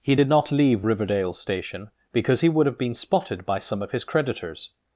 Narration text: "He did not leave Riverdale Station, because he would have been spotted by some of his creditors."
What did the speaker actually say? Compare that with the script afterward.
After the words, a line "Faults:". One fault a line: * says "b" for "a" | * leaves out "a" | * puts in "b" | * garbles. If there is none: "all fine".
"He did not leave Riverdale Station, because he would have been spotted by some of his creditors."
Faults:
all fine